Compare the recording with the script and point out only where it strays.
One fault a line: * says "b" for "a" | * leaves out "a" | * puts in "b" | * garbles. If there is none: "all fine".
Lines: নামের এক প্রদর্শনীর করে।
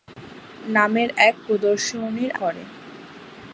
all fine